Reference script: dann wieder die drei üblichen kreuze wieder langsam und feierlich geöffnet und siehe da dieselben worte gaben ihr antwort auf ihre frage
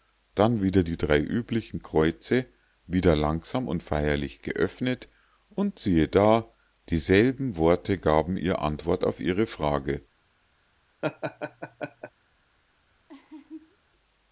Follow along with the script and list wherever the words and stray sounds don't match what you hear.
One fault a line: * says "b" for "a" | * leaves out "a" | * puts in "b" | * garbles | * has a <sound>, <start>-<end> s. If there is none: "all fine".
* has a laugh, 11.0-12.1 s
* has a laugh, 13.1-13.8 s